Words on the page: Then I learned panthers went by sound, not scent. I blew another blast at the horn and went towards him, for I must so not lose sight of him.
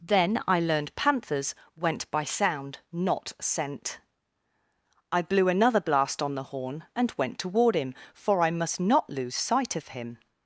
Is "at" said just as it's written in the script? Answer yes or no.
no